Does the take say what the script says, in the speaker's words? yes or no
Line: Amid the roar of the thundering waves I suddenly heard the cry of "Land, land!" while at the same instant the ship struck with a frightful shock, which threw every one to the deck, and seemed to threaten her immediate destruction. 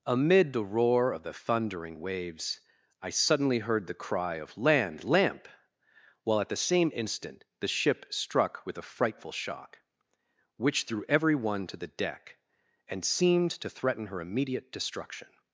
no